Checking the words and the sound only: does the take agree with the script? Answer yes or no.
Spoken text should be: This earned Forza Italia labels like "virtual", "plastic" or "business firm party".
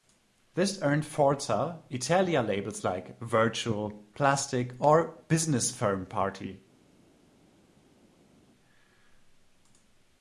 yes